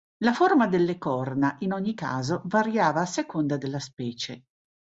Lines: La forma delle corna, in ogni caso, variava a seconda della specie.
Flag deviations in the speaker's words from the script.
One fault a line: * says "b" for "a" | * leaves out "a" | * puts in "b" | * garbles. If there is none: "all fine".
all fine